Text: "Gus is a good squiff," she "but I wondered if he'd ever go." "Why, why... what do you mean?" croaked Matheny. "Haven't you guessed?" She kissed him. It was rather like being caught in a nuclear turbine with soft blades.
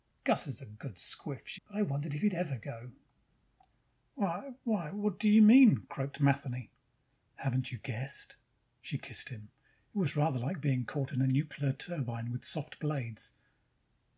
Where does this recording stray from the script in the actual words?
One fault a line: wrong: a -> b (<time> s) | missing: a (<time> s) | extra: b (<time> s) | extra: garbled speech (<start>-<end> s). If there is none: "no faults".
no faults